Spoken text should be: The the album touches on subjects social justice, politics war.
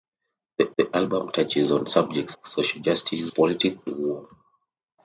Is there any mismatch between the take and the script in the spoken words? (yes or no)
no